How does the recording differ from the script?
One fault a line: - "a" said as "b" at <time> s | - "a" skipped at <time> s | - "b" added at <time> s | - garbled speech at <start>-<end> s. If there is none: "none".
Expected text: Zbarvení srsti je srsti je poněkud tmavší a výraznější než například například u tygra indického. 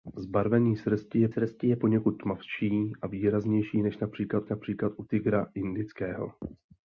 none